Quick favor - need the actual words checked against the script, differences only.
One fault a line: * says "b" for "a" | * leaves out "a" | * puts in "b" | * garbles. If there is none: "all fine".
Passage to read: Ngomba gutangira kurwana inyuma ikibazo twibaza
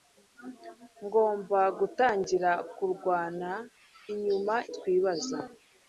* leaves out "ikibazo"